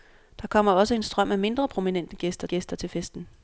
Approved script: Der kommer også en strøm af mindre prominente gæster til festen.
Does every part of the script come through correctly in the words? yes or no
no